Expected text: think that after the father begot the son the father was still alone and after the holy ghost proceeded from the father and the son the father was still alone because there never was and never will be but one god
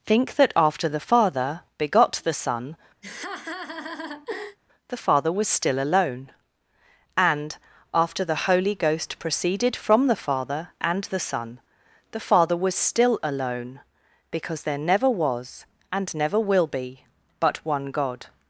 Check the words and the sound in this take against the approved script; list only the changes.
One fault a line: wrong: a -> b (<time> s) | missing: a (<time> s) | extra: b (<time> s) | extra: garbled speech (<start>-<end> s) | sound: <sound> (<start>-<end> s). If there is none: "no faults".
sound: laugh (3.0-4.6 s)